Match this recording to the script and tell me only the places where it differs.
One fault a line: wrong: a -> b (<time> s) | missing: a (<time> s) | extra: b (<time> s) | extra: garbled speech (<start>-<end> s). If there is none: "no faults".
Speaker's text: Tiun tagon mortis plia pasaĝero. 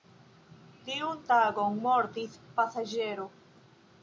missing: plia (2.4 s)